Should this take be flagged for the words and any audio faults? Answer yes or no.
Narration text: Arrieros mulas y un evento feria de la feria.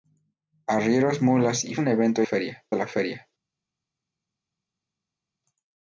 no